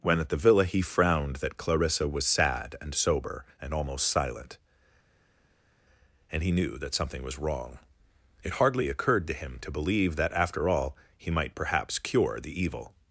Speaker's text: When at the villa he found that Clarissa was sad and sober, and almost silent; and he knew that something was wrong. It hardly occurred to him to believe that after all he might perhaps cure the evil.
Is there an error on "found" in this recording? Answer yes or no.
yes